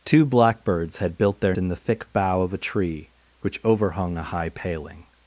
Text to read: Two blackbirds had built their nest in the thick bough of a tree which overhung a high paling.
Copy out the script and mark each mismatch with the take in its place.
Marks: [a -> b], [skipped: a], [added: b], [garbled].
Two blackbirds had built their [skipped: nest] in the thick bough of a tree which overhung a high paling.